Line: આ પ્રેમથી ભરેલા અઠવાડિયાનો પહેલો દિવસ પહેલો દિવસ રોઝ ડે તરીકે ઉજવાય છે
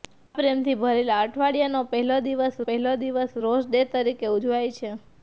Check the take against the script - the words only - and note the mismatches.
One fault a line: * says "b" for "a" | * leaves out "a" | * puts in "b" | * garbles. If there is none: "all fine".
all fine